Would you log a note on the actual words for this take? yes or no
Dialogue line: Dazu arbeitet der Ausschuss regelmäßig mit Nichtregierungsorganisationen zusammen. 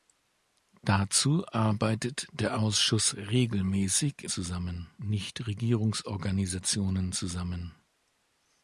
yes